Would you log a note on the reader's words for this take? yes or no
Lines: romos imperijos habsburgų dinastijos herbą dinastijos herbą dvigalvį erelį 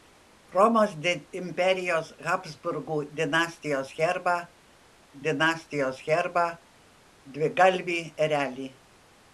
no